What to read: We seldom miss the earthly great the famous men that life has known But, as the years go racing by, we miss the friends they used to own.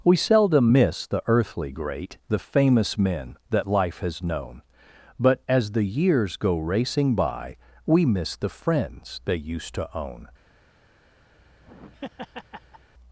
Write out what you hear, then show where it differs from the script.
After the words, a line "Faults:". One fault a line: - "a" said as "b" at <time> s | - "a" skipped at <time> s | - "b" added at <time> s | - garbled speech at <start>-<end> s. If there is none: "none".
We seldom miss the earthly great the famous men that life has known But, as the years go racing by, we miss the friends they used to own.
Faults:
none